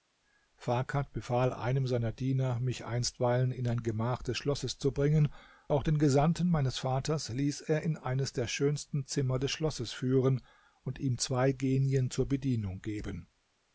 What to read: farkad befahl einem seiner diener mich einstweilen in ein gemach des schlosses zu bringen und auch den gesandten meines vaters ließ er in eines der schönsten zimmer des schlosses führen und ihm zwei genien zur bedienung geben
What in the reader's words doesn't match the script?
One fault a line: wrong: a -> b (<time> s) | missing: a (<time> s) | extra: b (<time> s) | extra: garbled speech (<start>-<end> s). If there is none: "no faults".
missing: und (5.3 s)